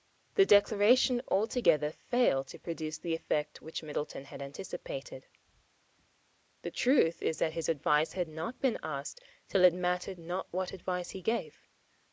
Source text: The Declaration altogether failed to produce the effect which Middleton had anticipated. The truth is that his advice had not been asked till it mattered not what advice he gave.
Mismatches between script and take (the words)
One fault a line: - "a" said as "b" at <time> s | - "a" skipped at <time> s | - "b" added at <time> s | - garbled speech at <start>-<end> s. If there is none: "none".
none